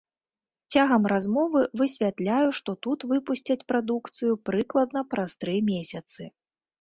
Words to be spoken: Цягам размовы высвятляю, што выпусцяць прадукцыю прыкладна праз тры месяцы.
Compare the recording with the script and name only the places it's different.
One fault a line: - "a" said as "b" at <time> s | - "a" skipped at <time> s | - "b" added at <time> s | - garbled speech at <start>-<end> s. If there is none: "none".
- "тут" added at 2.9 s